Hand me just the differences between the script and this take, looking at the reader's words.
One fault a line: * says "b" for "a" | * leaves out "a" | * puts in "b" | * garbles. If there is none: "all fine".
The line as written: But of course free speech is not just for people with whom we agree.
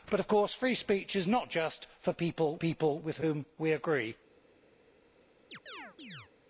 * puts in "people"